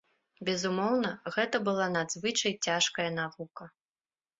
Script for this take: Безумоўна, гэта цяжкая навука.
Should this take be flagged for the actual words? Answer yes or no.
yes